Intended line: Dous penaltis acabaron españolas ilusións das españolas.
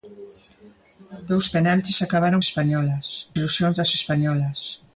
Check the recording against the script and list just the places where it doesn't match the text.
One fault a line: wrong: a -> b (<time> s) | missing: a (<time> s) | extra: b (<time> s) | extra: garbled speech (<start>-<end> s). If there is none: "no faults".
no faults